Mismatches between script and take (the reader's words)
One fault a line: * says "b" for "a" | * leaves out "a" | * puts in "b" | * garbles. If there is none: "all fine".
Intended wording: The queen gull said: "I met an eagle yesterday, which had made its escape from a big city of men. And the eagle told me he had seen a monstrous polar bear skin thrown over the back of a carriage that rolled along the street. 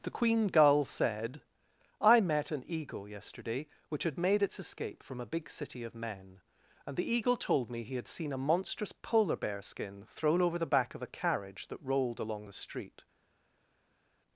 all fine